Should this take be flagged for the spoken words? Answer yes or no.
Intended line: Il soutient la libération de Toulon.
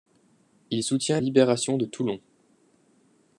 yes